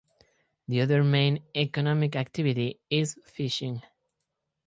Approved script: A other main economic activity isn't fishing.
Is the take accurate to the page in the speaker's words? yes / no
no